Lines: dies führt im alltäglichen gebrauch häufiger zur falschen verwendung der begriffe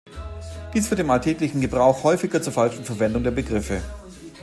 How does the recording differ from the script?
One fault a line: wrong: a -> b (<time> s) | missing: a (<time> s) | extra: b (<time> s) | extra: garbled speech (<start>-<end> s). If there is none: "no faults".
no faults